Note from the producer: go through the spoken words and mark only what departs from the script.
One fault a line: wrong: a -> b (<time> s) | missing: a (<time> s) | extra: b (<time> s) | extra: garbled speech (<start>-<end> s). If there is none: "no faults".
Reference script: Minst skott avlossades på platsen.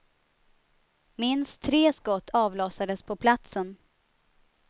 extra: tre (1.6 s)